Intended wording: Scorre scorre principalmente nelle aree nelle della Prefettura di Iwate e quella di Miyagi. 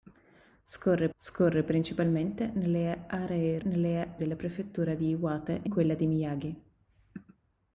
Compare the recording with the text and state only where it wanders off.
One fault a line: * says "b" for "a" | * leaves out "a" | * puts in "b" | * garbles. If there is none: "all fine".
all fine